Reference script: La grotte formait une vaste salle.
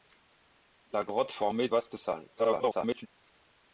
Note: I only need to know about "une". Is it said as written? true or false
false